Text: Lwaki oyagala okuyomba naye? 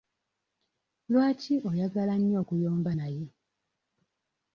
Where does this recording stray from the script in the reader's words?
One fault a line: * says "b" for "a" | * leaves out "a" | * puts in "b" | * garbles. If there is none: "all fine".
* puts in "nnyo"